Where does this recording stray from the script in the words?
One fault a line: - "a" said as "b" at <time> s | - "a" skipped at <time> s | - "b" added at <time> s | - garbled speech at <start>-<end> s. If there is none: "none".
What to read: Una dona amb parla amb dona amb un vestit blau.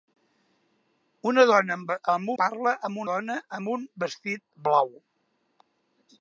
none